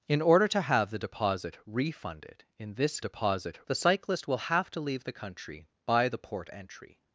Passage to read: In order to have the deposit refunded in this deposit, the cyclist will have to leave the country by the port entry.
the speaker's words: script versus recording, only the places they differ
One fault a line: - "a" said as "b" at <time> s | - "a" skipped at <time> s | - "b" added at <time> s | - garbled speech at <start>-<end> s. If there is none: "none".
none